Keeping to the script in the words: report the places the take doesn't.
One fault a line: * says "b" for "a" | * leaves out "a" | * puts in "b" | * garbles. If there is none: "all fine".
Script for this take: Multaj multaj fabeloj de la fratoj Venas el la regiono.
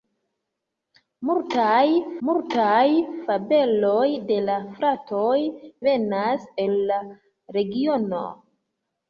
all fine